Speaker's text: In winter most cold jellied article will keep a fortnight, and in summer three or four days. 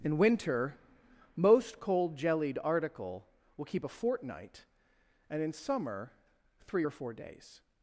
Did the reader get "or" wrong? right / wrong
right